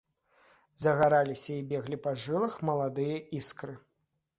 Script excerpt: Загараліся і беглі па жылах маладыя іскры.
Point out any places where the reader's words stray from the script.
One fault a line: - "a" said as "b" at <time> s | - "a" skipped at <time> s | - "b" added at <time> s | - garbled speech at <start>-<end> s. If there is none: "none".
none